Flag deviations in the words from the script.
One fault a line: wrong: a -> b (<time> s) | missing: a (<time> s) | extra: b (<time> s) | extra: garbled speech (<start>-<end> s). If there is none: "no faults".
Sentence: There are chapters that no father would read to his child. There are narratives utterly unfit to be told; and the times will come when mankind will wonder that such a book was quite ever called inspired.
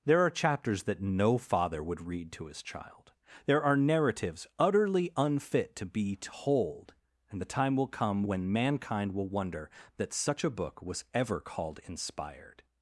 wrong: times -> time (7.5 s)
missing: quite (11.0 s)